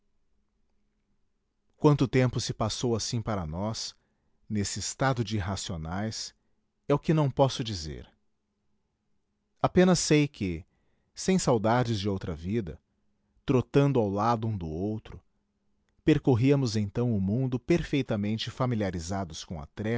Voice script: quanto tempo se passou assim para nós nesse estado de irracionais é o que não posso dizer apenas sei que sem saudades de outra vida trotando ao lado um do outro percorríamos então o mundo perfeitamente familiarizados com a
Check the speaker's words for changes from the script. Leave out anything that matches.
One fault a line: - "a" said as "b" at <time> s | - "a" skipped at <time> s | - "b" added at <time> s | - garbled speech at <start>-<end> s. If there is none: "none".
none